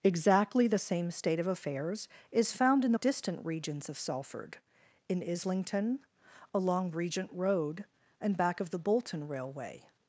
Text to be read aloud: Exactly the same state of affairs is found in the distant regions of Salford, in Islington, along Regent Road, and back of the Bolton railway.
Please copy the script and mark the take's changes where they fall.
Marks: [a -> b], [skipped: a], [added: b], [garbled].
Exactly the same state of affairs is found in the distant regions of Salford, in Islington, along Regent Road, and back of the Bolton railway.